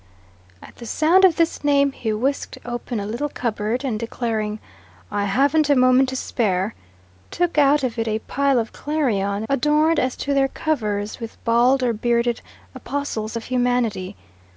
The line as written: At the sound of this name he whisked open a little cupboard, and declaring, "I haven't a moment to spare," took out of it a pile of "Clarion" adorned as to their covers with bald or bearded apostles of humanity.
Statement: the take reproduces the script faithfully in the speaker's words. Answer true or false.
true